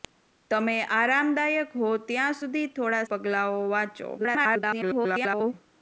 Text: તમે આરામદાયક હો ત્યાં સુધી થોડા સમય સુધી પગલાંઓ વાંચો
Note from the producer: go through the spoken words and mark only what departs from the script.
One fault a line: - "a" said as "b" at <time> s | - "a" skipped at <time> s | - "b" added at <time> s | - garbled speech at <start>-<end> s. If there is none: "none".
- "સમય સુધી" skipped at 3.0 s
- garbled speech at 4.2-5.5 s